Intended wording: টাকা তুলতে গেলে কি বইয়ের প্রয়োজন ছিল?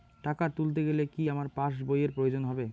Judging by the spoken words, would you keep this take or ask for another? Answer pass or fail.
fail